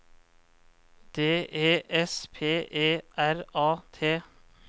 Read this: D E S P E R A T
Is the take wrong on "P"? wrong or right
right